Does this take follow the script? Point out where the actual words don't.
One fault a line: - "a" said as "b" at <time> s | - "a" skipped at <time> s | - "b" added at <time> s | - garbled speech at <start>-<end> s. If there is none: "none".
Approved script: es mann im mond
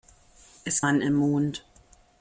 none